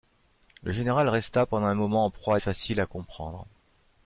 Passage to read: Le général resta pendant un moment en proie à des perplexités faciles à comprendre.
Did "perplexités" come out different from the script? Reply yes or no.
yes